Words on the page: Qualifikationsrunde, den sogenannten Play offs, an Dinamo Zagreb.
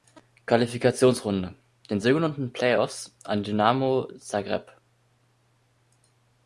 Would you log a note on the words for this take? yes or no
no